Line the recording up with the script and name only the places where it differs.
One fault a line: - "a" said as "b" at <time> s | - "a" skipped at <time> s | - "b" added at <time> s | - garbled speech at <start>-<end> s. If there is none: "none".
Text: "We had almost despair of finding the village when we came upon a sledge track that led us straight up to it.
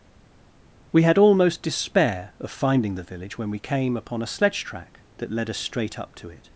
none